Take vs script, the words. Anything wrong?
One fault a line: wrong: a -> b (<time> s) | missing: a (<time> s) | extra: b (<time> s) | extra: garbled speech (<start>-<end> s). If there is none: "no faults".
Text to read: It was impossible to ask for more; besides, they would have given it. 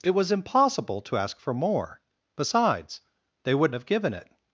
no faults